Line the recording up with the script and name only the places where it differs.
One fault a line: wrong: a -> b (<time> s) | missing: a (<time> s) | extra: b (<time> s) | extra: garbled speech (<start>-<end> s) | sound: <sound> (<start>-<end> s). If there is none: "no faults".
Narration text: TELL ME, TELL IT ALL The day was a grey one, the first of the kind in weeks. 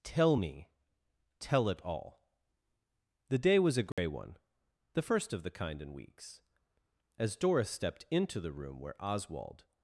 sound: dropout (3.9-4.0 s)
extra: As Doris stepped into the room where Oswald (7.2 s)